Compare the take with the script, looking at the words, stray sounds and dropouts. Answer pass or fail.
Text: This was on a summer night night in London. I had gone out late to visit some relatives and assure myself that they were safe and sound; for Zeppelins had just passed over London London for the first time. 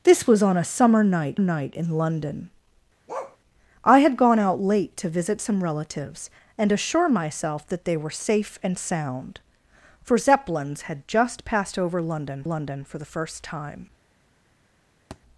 fail